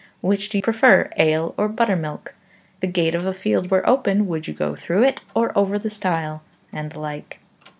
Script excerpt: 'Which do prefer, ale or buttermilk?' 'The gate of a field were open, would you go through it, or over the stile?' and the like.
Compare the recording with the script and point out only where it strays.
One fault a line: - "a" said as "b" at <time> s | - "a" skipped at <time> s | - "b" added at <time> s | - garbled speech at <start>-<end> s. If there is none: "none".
none